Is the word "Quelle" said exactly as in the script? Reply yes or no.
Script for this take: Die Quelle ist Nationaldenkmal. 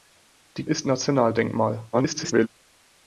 no